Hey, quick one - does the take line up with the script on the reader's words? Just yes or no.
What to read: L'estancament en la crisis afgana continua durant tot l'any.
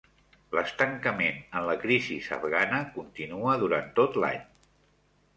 yes